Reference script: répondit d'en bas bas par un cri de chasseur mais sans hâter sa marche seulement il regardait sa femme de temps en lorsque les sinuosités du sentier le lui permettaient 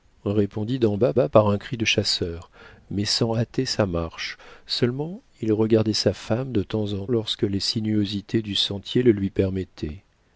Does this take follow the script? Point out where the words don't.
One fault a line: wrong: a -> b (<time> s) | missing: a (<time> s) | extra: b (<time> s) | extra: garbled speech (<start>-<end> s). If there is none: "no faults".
no faults